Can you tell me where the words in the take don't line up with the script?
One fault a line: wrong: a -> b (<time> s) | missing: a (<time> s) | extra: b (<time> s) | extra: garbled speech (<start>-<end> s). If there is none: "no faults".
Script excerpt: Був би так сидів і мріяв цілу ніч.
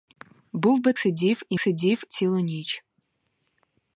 missing: так (0.9 s)
wrong: мріяв -> сидів (1.6 s)